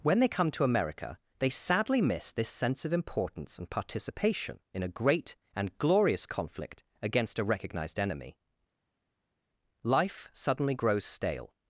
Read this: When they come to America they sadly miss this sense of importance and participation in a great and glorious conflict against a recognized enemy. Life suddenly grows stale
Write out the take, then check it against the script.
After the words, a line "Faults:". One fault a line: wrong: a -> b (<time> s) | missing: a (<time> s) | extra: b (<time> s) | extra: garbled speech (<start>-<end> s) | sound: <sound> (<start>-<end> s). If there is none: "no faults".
When they come to America they sadly miss this sense of importance and participation in a great and glorious conflict against a recognized enemy. Life suddenly grows stale
Faults:
no faults